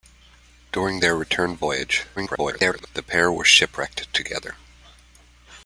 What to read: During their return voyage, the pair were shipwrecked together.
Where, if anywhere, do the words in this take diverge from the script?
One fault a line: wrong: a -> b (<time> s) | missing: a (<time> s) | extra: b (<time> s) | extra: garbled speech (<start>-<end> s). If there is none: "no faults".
extra: garbled speech (2.2-2.9 s)